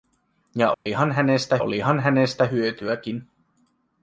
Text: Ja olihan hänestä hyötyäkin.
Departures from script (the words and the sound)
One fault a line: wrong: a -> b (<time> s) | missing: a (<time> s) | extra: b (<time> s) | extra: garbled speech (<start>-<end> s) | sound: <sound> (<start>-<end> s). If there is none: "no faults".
sound: dropout (0.7-0.9 s)
extra: olihan hänestä (1.6 s)